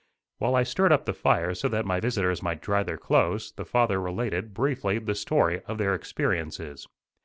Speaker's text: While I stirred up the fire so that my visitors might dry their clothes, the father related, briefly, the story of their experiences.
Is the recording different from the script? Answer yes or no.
no